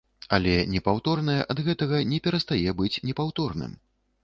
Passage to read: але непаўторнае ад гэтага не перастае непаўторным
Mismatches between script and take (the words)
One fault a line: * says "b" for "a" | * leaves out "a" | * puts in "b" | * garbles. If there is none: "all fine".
* puts in "быць"